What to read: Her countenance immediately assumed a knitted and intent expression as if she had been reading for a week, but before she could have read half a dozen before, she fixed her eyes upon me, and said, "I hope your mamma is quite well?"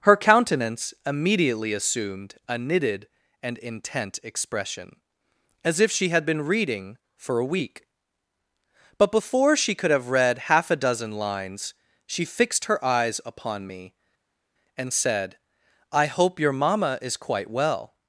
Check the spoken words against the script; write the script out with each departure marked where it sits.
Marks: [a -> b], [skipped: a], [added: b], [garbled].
Her countenance immediately assumed a knitted and intent expression as if she had been reading for a week, but before she could have read half a dozen [before, -> lines] she fixed her eyes upon me, and said, "I hope your mamma is quite well?"